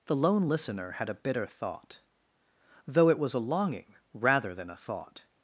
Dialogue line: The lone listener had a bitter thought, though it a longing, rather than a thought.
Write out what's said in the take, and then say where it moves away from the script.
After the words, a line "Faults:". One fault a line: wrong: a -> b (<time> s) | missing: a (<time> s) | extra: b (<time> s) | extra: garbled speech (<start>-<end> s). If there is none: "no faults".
The lone listener had a bitter thought, though it was a longing, rather than a thought.
Faults:
extra: was (3.2 s)